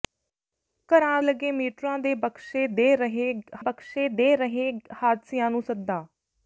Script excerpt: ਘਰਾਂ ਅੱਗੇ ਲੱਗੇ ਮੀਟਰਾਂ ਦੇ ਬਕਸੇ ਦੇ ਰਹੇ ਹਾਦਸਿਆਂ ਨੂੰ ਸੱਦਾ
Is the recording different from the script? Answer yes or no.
yes